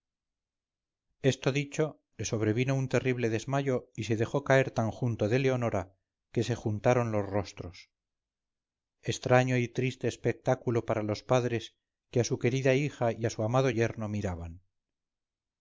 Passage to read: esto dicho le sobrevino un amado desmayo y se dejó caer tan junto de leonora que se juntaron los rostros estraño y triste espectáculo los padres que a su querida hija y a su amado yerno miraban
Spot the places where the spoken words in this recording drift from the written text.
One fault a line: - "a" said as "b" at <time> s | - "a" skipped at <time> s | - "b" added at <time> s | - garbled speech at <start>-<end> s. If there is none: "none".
- "amado" said as "terrible" at 2.9 s
- "para" added at 10.8 s